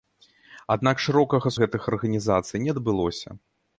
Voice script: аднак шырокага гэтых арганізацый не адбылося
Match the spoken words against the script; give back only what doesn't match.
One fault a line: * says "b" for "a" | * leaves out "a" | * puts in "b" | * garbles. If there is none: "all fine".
all fine